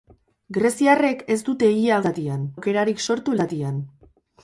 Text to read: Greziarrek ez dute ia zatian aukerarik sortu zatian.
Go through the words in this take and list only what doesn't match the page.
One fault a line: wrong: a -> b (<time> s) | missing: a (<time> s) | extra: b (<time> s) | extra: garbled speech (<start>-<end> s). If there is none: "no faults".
no faults